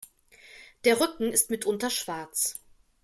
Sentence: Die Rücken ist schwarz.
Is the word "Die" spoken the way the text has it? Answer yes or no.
no